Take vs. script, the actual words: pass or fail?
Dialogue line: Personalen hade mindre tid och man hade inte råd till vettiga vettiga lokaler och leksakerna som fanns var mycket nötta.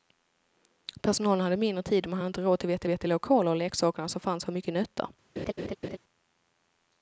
pass